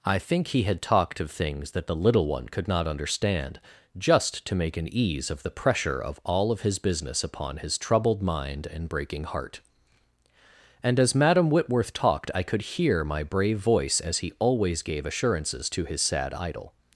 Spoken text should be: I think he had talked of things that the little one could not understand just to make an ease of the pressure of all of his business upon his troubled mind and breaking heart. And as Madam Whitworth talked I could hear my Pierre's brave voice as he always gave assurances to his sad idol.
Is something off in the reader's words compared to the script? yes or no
yes